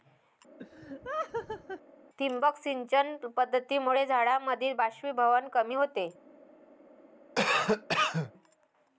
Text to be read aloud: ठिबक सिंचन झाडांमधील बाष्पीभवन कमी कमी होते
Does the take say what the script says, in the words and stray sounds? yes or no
no